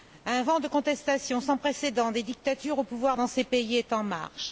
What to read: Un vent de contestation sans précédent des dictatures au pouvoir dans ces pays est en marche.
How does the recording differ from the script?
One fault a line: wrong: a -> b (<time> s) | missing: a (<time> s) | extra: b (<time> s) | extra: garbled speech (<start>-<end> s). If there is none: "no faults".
no faults